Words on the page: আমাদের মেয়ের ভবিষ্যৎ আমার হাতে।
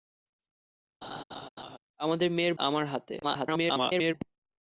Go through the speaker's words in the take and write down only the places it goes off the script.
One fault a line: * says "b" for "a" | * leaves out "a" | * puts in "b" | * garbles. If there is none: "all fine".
* leaves out "ভবিষ্যৎ"
* garbles